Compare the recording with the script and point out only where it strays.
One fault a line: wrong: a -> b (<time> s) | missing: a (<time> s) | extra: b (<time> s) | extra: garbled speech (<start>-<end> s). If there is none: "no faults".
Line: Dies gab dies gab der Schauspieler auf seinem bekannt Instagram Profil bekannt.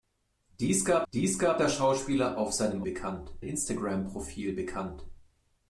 no faults